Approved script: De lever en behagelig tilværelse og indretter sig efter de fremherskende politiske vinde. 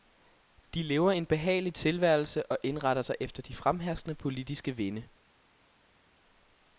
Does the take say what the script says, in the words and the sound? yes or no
yes